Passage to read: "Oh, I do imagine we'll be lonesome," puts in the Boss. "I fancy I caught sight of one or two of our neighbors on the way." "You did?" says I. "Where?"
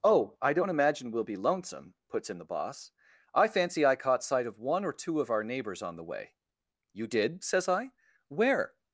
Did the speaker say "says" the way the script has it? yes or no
yes